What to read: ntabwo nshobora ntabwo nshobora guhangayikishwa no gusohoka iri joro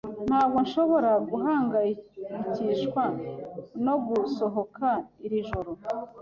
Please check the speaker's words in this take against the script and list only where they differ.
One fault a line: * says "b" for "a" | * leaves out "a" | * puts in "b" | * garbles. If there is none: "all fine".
* leaves out "ntabwo nshobora"